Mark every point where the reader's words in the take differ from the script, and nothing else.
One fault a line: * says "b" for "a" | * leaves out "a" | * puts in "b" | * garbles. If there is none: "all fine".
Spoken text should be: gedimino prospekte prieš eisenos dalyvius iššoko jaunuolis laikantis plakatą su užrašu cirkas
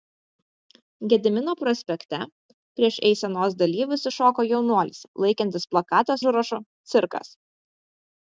* leaves out "su"